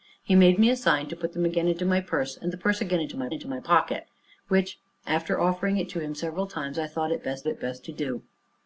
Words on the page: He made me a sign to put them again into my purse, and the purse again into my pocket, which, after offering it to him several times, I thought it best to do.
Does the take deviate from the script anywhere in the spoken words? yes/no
yes